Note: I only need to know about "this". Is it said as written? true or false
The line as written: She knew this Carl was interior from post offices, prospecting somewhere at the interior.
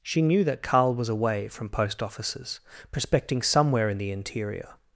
false